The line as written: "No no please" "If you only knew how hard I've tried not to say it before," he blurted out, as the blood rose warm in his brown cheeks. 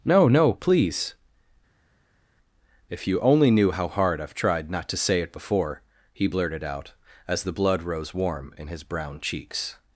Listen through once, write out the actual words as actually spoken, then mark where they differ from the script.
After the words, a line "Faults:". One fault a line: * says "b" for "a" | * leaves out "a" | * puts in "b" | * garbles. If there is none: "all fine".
"No no please" "If you only knew how hard I've tried not to say it before," he blurted out, as the blood rose warm in his brown cheeks.
Faults:
all fine